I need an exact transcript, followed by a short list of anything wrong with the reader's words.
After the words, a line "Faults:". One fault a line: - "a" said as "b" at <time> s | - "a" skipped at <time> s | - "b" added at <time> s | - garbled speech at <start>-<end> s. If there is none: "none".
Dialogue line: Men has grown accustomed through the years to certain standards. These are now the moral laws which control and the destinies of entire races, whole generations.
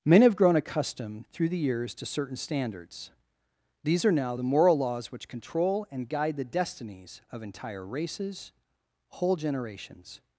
Men have grown accustomed through the years to certain standards. These are now the moral laws which control and guide the destinies of entire races, whole generations.
Faults:
- "has" said as "have" at 0.2 s
- "guide" added at 6.1 s